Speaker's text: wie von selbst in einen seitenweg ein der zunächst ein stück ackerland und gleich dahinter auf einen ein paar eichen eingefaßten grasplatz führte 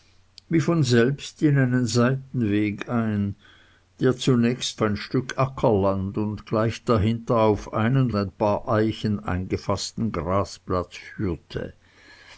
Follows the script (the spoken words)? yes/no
yes